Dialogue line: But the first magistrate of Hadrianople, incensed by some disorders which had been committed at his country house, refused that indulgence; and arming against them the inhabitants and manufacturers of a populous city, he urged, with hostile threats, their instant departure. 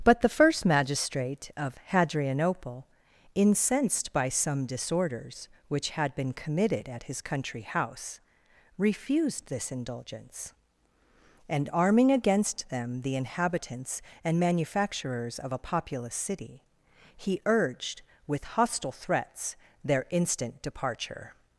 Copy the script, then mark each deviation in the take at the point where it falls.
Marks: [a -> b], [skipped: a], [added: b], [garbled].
But the first magistrate of Hadrianople, incensed by some disorders which had been committed at his country house, refused [that -> this] indulgence; and arming against them the inhabitants and manufacturers of a populous city, he urged, with hostile threats, their instant departure.